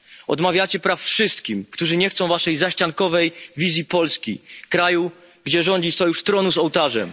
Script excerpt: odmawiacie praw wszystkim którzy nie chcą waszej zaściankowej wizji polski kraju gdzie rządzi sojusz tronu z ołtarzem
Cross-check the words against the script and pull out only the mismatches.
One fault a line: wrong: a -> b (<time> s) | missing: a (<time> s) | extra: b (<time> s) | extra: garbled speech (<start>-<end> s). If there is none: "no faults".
no faults